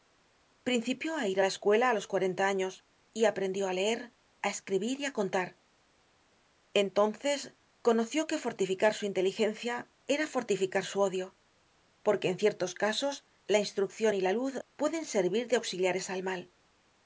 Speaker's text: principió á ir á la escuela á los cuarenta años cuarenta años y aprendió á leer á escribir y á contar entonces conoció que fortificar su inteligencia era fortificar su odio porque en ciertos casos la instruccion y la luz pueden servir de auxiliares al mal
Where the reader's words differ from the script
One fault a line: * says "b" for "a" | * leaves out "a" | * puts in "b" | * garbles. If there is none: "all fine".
* leaves out "cuarenta años"